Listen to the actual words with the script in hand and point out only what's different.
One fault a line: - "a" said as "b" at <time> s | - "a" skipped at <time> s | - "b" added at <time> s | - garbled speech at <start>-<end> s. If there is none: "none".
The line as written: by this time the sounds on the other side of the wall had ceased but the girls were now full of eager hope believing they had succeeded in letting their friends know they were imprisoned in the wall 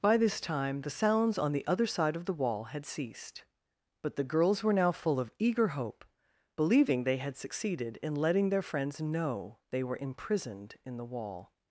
none